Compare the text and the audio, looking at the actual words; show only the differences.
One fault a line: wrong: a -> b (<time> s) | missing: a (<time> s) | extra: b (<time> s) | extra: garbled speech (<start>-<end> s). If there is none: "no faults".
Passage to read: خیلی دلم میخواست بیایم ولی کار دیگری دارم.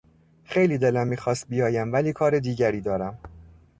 no faults